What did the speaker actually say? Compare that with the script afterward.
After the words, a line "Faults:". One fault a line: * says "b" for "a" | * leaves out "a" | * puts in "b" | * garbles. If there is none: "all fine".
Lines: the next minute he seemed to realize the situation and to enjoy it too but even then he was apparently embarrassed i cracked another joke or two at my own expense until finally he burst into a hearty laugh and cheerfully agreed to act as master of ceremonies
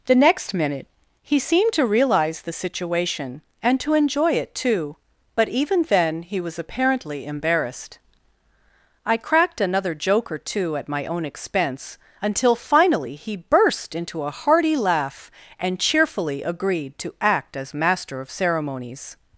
the next minute he seemed to realize the situation and to enjoy it too but even then he was apparently embarrassed i cracked another joke or two at my own expense until finally he burst into a hearty laugh and cheerfully agreed to act as master of ceremonies
Faults:
all fine